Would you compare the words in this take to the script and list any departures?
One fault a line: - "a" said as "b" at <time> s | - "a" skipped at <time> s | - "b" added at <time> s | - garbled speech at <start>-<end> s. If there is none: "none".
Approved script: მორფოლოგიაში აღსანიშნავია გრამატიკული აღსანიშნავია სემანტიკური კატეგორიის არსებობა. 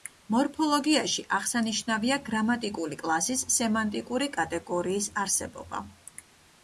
- "აღსანიშნავია" said as "კლასის" at 3.0 s